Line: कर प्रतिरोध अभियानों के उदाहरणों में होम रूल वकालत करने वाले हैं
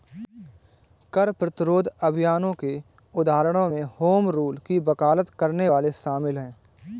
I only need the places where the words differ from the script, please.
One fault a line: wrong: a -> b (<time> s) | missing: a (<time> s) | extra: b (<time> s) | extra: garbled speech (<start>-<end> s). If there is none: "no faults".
extra: की (4.7 s)
extra: शामिल (5.9 s)